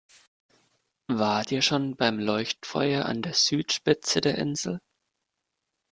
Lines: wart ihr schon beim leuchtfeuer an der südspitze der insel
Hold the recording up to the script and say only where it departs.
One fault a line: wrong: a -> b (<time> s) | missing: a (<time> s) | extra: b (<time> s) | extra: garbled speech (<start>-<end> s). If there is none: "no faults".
no faults